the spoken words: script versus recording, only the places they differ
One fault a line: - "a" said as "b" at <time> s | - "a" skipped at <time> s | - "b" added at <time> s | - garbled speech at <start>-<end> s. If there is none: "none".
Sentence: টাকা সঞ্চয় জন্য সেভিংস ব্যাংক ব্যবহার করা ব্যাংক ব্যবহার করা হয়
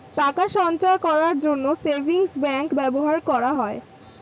- "করার" added at 1.1 s
- "ব্যাংক ব্যবহার করা" skipped at 3.5 s